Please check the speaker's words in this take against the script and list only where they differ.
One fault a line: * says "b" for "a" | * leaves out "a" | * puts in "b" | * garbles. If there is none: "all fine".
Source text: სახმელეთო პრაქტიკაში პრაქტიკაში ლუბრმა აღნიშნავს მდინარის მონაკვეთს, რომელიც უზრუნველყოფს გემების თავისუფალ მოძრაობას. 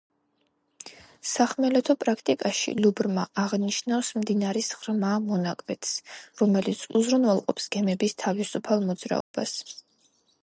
* leaves out "პრაქტიკაში"
* puts in "ღრმა"